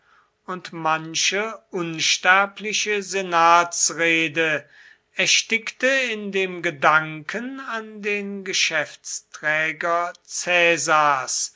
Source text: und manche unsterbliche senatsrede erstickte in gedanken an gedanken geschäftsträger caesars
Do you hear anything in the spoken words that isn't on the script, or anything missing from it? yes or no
yes